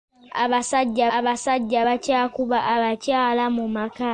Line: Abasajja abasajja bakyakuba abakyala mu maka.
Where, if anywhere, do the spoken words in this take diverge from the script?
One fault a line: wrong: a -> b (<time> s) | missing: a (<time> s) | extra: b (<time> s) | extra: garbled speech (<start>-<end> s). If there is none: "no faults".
no faults